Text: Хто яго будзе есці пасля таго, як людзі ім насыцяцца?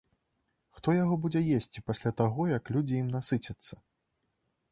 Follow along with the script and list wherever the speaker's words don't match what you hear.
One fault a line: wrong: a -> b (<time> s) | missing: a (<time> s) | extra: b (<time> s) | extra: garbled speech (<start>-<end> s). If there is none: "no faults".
no faults